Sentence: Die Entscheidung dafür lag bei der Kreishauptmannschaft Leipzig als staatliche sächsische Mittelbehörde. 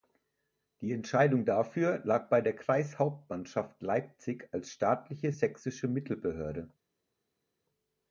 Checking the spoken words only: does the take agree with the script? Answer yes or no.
yes